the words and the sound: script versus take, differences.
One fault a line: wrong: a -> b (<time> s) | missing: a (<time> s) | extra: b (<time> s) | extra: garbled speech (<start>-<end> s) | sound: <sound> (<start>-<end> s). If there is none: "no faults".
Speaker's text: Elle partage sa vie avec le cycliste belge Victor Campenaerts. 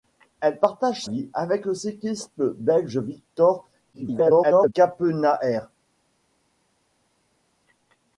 missing: sa (1.1 s)
extra: garbled speech (3.9-4.7 s)